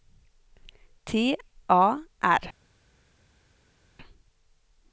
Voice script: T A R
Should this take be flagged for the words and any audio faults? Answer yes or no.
no